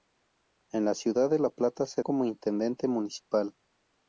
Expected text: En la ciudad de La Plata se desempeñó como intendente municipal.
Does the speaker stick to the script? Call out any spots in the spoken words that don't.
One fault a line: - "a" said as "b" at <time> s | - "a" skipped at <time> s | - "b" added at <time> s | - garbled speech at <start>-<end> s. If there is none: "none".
- "desempeñó" skipped at 2.0 s